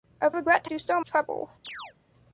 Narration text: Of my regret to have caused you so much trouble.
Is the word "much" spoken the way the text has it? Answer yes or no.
no